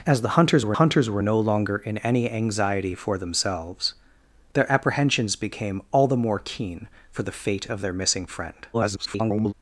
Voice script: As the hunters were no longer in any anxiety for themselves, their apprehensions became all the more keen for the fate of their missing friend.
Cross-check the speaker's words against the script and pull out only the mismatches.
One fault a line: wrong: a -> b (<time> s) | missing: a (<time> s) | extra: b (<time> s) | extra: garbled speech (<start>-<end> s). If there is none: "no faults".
extra: hunters were (0.7 s)
extra: garbled speech (8.7-9.5 s)